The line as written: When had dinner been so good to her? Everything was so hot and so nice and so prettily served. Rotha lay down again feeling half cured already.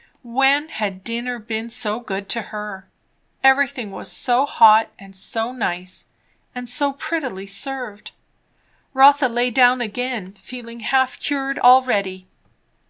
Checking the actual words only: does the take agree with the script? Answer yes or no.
yes